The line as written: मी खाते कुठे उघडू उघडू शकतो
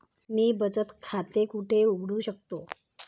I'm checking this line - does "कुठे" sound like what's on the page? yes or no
yes